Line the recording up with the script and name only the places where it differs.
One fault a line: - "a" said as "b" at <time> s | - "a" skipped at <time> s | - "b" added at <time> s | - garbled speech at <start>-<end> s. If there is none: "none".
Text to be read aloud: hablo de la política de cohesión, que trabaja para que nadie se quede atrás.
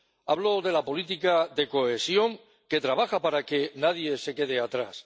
none